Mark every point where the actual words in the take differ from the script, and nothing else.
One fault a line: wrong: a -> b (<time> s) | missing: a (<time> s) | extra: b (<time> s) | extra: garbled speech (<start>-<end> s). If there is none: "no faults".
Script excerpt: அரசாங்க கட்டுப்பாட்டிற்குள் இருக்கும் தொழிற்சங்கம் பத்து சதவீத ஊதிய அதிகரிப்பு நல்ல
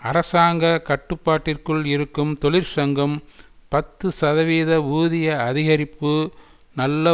no faults